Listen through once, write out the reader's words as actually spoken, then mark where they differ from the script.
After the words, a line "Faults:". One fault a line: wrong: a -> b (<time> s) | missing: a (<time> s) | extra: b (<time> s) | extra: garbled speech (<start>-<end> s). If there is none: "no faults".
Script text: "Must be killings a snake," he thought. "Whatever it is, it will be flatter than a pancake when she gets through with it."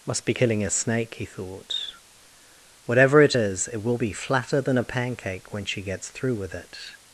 "Must be killing a snake," he thought. "Whatever it is, it will be flatter than a pancake when she gets through with it."
Faults:
wrong: killings -> killing (0.3 s)